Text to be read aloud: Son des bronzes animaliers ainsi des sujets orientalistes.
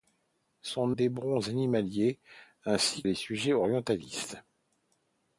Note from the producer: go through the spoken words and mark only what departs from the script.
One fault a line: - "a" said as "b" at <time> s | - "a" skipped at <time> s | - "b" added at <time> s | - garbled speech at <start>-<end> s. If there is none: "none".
none